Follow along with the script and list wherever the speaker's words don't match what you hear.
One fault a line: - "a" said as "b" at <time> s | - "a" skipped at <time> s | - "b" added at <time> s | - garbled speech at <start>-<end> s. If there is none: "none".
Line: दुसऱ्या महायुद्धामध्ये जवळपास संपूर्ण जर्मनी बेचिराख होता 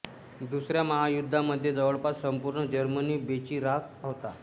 none